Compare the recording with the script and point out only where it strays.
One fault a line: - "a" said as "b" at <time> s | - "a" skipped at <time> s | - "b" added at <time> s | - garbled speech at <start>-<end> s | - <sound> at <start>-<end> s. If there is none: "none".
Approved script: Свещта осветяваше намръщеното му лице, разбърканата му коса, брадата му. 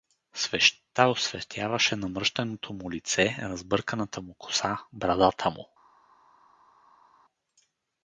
none